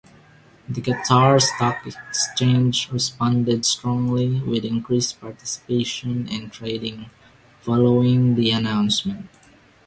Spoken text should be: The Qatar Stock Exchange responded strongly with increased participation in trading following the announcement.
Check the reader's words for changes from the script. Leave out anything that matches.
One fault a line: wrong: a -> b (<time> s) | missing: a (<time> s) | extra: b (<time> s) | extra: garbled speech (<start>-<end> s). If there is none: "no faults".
no faults